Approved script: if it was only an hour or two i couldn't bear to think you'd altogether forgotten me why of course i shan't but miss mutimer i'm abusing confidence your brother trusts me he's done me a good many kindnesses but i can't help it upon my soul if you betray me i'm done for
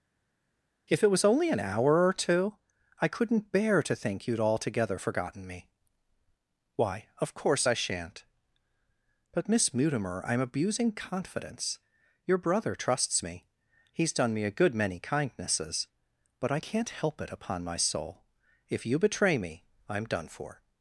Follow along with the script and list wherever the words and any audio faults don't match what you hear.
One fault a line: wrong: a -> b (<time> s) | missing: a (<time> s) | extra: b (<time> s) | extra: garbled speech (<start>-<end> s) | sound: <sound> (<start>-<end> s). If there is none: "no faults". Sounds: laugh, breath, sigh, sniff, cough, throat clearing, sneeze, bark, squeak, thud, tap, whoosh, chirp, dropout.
no faults